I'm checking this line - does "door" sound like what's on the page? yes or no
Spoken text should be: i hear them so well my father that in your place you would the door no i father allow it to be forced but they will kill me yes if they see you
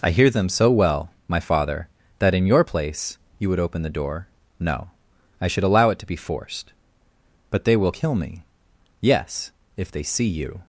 yes